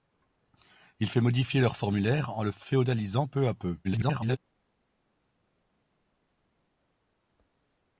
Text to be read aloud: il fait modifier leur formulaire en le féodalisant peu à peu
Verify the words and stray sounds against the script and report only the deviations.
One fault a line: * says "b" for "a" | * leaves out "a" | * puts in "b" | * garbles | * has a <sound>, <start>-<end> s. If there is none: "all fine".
* garbles